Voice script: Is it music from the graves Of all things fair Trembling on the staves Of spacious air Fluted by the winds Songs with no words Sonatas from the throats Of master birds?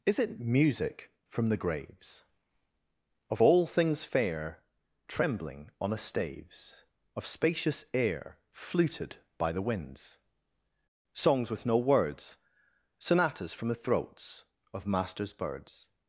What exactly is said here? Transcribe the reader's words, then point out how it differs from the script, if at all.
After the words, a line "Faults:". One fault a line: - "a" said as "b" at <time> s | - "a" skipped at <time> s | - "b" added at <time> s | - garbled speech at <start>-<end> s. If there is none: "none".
Is it music from the graves Of all things fair Trembling on a staves Of spacious air Fluted by the winds Songs with no words Sonatas from the throats Of masters birds?
Faults:
- "the" said as "a" at 5.9 s
- "master" said as "masters" at 14.9 s